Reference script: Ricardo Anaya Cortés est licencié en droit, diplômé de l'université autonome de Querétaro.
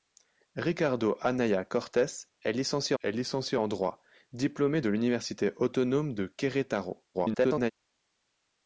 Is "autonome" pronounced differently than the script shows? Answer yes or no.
no